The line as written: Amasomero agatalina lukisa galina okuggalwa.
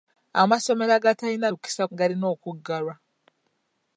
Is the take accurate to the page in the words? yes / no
yes